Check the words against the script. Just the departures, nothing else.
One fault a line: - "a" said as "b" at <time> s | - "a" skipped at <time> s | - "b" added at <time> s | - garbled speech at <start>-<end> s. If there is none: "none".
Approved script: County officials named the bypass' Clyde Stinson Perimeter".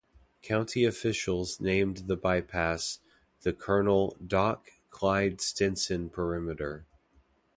- "the Colonel Doc" added at 3.4 s